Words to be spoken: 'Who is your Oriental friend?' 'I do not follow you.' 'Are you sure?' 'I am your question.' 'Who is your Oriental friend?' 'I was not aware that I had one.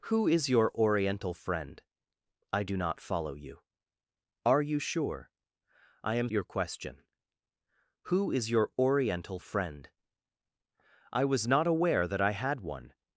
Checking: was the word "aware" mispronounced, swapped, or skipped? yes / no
no